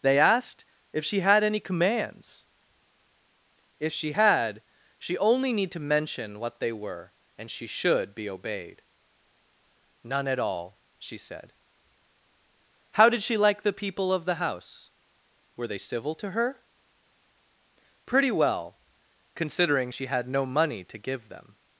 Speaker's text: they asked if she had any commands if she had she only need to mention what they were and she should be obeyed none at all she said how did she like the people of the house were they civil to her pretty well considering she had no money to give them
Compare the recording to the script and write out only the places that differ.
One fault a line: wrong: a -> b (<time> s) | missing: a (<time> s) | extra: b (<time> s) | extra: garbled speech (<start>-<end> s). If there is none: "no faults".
no faults